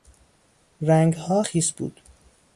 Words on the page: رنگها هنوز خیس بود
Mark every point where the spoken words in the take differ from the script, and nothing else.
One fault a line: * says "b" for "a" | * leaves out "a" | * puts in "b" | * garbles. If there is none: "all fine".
* leaves out "هنوز"